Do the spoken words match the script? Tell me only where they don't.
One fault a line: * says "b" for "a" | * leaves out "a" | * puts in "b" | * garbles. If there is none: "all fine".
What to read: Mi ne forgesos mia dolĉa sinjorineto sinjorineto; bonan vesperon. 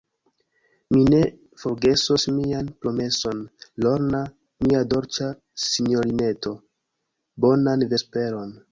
* puts in "mian promeson Lorna"
* leaves out "sinjorineto"